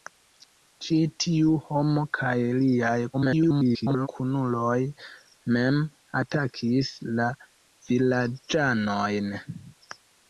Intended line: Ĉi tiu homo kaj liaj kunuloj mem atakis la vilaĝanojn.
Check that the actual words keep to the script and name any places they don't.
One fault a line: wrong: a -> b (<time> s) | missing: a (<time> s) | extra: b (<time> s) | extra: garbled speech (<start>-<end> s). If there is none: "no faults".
extra: garbled speech (3.1-4.1 s)